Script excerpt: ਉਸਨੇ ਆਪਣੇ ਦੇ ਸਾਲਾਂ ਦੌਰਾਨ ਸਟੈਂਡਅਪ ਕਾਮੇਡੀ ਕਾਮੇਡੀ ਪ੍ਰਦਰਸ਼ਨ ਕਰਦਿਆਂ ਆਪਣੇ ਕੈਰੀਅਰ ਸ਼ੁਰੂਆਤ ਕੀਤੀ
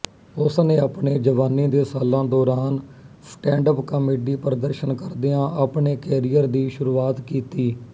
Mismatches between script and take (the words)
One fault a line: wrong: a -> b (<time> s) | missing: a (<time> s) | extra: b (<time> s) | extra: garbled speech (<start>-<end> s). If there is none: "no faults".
extra: ਜਵਾਨੀ (1.2 s)
missing: ਕਾਮੇਡੀ (4.4 s)
extra: ਦੀ (6.5 s)